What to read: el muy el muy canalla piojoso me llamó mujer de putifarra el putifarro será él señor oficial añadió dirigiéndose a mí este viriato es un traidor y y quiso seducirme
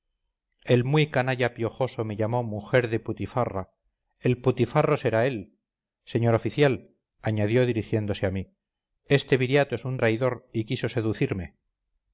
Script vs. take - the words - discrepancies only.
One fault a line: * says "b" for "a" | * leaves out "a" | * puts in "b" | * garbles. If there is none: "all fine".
* leaves out "el muy"
* leaves out "y"